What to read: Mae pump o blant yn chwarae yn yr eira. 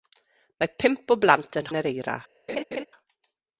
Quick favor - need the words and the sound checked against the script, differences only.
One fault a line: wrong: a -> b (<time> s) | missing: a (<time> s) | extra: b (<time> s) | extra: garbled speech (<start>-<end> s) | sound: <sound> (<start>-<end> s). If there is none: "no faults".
missing: chwarae (1.7 s)
sound: laugh (2.5-2.9 s)